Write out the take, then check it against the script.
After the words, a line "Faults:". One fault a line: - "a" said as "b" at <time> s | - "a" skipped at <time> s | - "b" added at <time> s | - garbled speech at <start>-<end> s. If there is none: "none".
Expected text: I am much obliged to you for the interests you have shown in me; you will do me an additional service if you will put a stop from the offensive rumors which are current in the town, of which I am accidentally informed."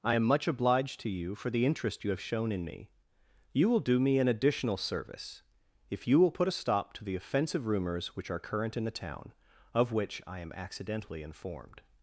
I am much obliged to you for the interest you have shown in me; you will do me an additional service if you will put a stop to the offensive rumors which are current in the town, of which I am accidentally informed."
Faults:
- "interests" said as "interest" at 1.6 s
- "from" said as "to" at 6.9 s